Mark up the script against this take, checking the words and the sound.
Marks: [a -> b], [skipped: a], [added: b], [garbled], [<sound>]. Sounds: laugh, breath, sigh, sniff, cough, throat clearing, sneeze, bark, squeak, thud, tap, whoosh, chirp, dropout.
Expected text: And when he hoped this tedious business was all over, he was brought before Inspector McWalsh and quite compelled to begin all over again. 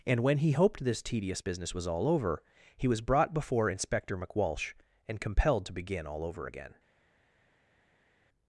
And when he hoped this tedious business was all over, he was brought before Inspector McWalsh and [skipped: quite] compelled to begin all over again.